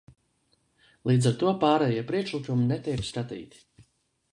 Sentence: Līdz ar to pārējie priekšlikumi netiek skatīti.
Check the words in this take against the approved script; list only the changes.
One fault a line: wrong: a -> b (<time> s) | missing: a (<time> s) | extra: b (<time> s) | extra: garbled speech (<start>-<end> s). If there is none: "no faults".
no faults